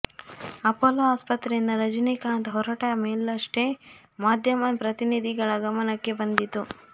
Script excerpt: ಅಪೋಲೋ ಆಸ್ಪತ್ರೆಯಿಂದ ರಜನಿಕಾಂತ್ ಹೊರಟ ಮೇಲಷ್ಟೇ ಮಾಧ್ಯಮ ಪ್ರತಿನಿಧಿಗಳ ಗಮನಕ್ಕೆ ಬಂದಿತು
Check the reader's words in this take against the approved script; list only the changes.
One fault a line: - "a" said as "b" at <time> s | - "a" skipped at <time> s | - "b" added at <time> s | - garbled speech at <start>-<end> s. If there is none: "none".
none